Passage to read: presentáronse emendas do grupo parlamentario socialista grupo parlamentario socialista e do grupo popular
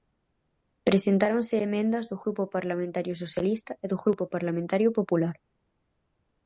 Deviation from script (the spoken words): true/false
true